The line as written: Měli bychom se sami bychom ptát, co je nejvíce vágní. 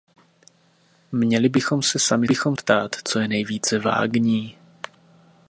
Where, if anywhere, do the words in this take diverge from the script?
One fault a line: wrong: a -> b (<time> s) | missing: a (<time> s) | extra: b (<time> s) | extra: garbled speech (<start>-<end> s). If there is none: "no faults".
no faults